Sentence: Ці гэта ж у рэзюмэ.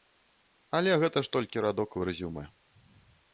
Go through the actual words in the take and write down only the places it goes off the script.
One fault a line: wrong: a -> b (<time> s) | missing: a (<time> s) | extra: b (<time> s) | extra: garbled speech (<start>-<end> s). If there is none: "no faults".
wrong: Ці -> Але (0.8 s)
extra: толькі радок (1.4 s)